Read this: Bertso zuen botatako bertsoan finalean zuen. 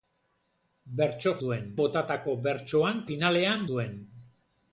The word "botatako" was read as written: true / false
true